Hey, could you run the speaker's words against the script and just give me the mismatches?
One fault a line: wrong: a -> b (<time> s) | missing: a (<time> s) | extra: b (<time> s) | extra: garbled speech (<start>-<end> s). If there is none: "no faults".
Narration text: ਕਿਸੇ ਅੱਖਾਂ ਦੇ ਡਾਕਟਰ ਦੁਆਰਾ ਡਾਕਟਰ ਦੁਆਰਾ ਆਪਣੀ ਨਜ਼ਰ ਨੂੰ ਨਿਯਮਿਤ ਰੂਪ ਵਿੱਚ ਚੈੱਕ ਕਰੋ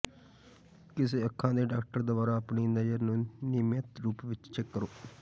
missing: ਡਾਕਟਰ ਦੁਆਰਾ (2.4 s)